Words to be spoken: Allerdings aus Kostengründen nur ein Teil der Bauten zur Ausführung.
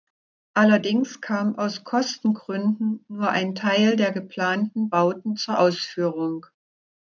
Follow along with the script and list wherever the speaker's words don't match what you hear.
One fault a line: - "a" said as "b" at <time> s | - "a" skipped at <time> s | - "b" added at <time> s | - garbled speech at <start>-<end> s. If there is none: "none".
- "kam" added at 1.2 s
- "geplanten" added at 4.1 s